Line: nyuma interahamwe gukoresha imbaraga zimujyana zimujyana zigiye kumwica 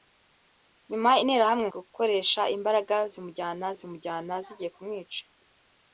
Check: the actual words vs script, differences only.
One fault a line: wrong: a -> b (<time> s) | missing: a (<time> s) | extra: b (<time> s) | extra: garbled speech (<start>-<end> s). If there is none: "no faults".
no faults